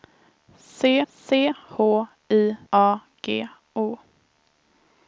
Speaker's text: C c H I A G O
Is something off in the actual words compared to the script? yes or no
no